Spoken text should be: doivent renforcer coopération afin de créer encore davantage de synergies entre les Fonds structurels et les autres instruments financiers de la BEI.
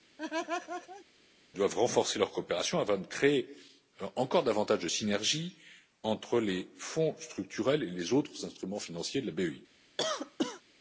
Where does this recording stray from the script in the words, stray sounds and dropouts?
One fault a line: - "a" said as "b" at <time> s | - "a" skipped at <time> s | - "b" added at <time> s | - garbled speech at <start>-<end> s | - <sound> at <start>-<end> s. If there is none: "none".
- laugh at 0.2-1.1 s
- "leur" added at 2.2 s
- cough at 10.0-10.6 s